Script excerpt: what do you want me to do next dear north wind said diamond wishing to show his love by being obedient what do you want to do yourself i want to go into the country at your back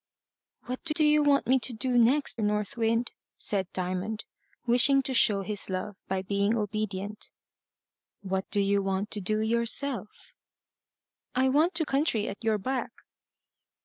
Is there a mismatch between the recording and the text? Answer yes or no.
yes